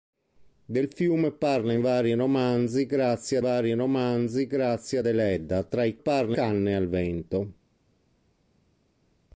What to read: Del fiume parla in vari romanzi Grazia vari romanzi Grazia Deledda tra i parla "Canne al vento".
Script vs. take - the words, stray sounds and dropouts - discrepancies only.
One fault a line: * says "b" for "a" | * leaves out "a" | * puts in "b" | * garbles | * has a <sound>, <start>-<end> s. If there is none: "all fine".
all fine